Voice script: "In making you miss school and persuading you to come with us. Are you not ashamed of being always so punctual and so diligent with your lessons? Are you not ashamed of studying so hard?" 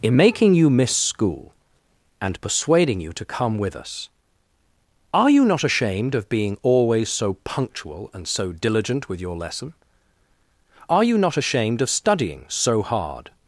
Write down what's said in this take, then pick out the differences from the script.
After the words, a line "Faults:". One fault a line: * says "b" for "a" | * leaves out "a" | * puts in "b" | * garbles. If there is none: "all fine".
"In making you miss school and persuading you to come with us. Are you not ashamed of being always so punctual and so diligent with your lesson? Are you not ashamed of studying so hard?"
Faults:
* says "lesson" for "lessons"